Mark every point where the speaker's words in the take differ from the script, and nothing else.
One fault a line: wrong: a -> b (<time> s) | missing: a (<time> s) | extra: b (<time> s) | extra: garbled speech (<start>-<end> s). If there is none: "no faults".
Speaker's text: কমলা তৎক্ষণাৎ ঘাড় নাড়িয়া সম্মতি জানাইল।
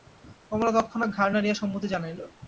no faults